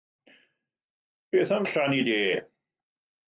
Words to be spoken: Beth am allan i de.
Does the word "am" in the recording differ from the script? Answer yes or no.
no